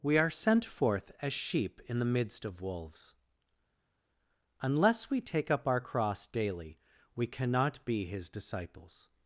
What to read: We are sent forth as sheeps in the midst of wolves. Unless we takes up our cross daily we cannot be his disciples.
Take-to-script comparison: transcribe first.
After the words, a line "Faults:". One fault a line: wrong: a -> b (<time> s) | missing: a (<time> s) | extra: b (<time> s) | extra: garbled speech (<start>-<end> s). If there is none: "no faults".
We are sent forth as sheep in the midst of wolves. Unless we take up our cross daily we cannot be his disciples.
Faults:
wrong: sheeps -> sheep (1.3 s)
wrong: takes -> take (5.2 s)